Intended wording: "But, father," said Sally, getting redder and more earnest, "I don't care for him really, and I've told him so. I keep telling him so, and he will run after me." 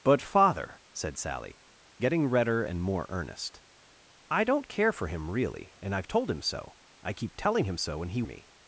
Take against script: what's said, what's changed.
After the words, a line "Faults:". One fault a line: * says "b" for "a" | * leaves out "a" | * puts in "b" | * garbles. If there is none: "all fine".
"But, father," said Sally, getting redder and more earnest, "I don't care for him really, and I've told him so. I keep telling him so, and he me."
Faults:
* leaves out "will run after"